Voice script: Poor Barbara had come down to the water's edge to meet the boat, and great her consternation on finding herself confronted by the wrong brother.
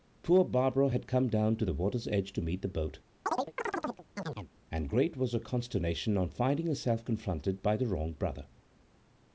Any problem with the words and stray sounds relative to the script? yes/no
yes